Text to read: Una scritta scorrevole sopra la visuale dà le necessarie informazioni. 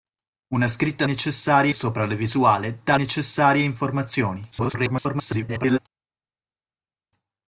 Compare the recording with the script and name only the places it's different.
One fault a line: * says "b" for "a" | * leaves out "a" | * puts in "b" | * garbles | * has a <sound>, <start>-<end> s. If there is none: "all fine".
* says "necessarie" for "scorrevole"
* leaves out "le"
* garbles